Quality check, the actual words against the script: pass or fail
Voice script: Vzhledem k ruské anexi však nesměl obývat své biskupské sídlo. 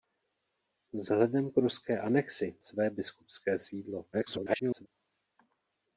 fail